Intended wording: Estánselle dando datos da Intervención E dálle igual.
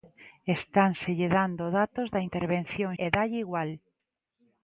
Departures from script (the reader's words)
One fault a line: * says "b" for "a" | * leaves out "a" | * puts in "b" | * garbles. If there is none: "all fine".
all fine